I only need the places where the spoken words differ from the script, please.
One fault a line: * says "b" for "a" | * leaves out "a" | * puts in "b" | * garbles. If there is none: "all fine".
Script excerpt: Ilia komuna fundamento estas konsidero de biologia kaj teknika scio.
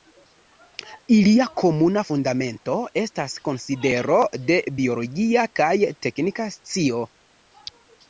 all fine